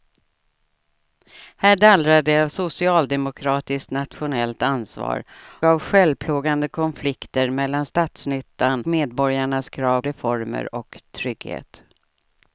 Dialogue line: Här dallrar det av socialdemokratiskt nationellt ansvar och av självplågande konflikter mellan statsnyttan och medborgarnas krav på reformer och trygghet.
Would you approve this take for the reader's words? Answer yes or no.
no